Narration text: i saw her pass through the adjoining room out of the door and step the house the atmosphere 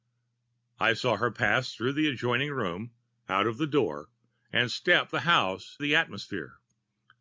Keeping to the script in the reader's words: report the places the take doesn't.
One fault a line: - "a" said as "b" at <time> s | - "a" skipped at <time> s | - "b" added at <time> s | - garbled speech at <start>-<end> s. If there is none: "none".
none